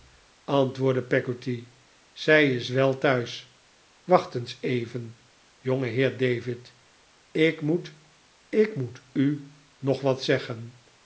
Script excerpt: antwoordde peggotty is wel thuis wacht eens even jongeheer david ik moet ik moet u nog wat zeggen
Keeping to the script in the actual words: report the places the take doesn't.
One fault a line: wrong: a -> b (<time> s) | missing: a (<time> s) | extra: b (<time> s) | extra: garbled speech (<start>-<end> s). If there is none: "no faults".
extra: zij (2.1 s)